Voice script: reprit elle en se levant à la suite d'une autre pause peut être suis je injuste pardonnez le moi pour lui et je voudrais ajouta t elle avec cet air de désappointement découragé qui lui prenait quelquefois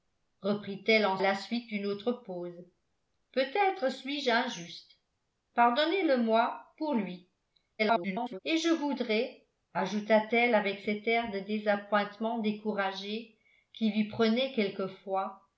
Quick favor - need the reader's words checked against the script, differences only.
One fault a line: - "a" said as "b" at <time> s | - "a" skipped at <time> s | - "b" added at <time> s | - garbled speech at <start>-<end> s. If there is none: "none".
- "se levant à" skipped at 1.2 s
- garbled speech at 7.8-8.4 s